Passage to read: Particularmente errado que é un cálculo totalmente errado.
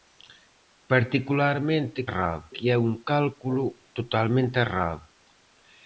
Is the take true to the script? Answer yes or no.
yes